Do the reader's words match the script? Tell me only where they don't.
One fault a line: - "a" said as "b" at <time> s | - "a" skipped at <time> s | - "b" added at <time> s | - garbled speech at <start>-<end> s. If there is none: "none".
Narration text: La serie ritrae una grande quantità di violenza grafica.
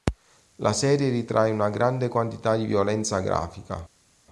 none